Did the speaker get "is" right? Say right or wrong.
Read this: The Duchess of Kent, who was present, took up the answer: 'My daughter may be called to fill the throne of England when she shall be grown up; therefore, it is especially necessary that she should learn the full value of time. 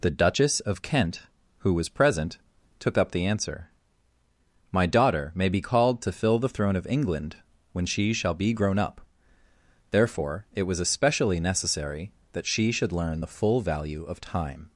wrong